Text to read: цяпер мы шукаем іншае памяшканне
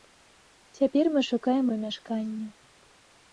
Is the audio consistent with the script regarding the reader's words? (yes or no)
no